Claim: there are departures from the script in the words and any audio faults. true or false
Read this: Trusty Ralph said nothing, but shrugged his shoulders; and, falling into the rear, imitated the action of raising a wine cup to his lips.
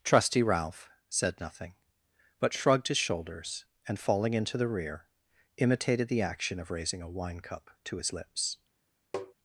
true